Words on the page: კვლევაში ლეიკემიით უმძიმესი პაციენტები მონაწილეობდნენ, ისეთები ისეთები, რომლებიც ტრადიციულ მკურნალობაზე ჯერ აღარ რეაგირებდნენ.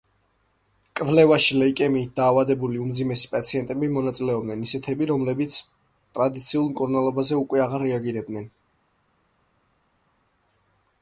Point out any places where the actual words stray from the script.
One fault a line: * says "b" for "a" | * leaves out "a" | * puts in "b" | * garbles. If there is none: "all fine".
* puts in "დაავადებული"
* leaves out "ისეთები"
* says "უკვე" for "ჯერ"